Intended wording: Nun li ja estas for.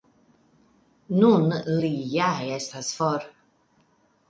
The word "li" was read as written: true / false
true